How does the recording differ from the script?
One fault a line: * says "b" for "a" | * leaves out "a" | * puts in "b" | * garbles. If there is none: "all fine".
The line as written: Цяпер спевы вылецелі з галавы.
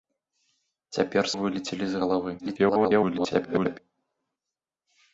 * leaves out "спевы"
* garbles